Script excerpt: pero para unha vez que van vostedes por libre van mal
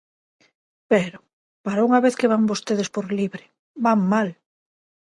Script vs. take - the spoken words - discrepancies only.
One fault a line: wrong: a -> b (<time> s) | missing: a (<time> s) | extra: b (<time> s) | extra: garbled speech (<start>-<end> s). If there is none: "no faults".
no faults